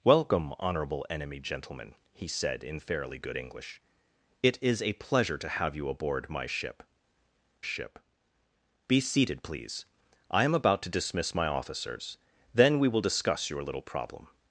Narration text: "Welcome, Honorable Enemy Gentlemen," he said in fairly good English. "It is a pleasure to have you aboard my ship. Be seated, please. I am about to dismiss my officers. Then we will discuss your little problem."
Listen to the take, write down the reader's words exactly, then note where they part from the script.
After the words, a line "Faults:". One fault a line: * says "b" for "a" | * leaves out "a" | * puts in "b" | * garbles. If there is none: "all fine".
"Welcome, Honorable Enemy Gentlemen," he said in fairly good English. "It is a pleasure to have you aboard my ship ship. Be seated, please. I am about to dismiss my officers. Then we will discuss your little problem."
Faults:
* puts in "ship"